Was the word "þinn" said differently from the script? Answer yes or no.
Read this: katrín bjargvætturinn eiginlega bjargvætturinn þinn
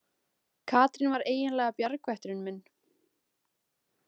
yes